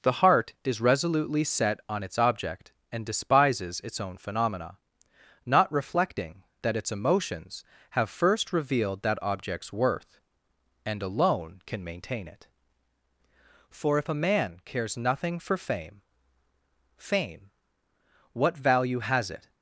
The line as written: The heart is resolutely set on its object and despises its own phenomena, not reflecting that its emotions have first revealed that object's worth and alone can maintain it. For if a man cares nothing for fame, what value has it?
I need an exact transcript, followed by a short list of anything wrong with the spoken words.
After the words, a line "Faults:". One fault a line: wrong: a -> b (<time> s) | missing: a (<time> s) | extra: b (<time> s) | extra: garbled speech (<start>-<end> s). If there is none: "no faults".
The heart is resolutely set on its object and despises its own phenomena, not reflecting that its emotions have first revealed that object's worth and alone can maintain it. For if a man cares nothing for fame fame, what value has it?
Faults:
extra: fame (17.0 s)